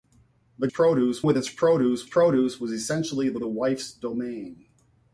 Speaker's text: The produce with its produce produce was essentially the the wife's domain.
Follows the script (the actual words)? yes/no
yes